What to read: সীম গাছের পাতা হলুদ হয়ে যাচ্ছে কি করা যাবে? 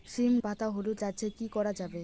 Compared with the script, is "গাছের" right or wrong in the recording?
wrong